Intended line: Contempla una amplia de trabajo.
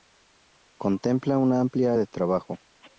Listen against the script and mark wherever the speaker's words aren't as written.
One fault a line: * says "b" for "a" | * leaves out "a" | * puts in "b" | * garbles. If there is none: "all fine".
all fine